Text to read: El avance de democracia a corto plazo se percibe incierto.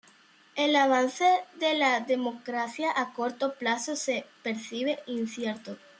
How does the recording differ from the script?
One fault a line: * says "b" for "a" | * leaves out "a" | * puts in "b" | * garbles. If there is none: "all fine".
* puts in "la"